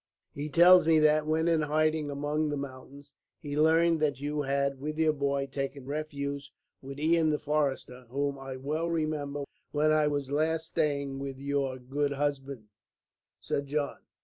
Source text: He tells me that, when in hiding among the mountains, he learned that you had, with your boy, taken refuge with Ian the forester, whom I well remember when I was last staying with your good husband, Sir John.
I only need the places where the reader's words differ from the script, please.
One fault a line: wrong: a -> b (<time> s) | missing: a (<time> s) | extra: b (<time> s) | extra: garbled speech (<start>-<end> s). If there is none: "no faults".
no faults